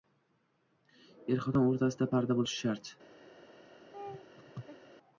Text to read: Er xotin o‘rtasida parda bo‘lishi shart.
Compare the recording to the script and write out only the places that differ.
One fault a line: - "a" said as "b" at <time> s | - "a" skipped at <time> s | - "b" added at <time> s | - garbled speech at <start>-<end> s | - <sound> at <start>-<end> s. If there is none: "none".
- laugh at 3.9-4.9 s